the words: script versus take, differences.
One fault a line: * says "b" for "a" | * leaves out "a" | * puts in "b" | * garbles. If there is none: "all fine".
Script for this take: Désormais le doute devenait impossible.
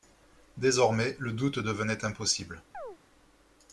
all fine